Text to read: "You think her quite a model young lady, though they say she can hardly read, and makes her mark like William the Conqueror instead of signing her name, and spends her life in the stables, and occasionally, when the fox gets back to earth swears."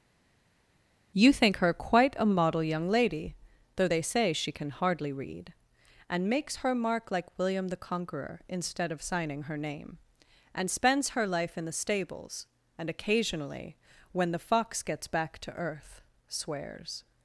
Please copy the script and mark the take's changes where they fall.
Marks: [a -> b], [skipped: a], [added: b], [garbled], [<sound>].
"You think her quite a model young lady, though they say she can hardly read, and makes her mark like William the Conqueror instead of signing her name, and spends her life in the stables, and occasionally, when the fox gets back to earth swears."